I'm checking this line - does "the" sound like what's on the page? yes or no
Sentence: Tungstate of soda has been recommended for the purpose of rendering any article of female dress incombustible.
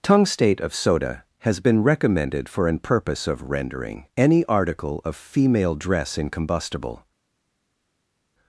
no